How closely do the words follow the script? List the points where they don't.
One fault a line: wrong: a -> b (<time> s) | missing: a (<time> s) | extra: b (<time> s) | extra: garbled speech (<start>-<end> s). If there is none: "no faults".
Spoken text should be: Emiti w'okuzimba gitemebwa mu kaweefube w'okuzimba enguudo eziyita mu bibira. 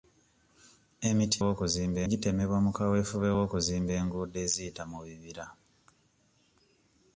no faults